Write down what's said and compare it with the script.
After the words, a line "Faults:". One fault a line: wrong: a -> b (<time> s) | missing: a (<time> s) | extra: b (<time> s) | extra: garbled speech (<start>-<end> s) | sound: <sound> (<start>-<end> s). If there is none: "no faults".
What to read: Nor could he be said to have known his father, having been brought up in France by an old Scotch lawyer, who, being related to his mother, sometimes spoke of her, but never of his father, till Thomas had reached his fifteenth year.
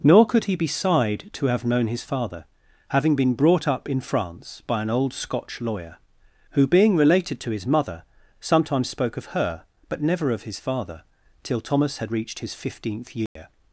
Nor could he be sighed to have known his father, having been brought up in France by an old Scotch lawyer, who, being related to his mother, sometimes spoke of her, but never of his father, till Thomas had reached his fifteenth year.
Faults:
wrong: said -> sighed (0.7 s)
sound: dropout (13.3-13.4 s)